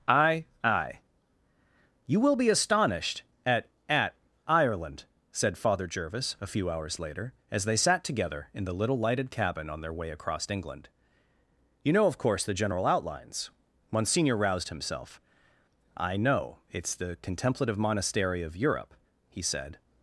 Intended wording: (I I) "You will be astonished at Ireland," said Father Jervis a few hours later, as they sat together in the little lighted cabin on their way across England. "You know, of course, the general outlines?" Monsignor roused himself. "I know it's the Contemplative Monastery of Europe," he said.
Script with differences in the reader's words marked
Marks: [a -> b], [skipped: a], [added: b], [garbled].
(I I) "You will be astonished at [added: at] Ireland," said Father Jervis a few hours later, as they sat together in the little lighted cabin on their way across England. "You know, of course, the general outlines?" Monsignor roused himself. "I know it's the Contemplative Monastery of Europe," he said.